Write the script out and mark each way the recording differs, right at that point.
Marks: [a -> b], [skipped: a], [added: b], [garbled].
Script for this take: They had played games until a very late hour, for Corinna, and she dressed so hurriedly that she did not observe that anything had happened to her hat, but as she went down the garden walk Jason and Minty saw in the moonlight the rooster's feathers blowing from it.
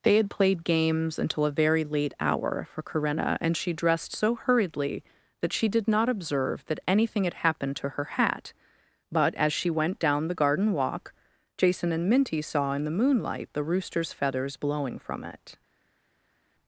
They had played games until a very late hour, for Corinna, and she dressed so hurriedly that she did not observe that anything had happened to her hat, but as she went down the garden walk Jason and Minty saw in the moonlight the rooster's feathers blowing from it.